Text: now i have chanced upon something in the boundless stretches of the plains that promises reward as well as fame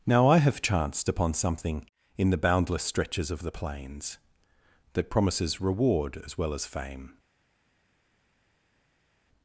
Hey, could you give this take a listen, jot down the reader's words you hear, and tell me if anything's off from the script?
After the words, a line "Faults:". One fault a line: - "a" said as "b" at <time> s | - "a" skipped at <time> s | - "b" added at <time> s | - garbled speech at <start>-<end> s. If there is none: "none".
now i have chanced upon something in the boundless stretches of the plains that promises reward as well as fame
Faults:
none